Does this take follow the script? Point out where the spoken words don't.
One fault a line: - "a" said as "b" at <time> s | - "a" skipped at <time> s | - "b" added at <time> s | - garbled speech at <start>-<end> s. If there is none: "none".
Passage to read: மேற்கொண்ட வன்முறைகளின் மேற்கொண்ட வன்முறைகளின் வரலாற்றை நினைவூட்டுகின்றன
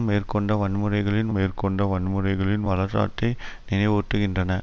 none